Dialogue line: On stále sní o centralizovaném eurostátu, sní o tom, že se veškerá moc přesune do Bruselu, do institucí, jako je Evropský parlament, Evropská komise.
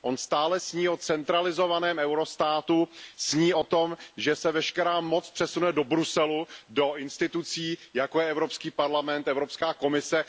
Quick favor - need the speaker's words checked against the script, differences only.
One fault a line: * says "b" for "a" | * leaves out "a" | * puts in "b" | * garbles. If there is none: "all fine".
all fine